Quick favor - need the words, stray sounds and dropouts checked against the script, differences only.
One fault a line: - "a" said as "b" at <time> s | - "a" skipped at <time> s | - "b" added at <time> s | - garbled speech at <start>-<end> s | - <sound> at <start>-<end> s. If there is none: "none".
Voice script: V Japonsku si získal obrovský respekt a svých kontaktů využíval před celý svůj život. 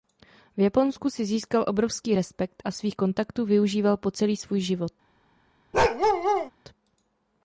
- "před" said as "po" at 4.0 s
- bark at 5.7-6.5 s